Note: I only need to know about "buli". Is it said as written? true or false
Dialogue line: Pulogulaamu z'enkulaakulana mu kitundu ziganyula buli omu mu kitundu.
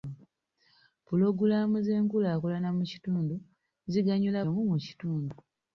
false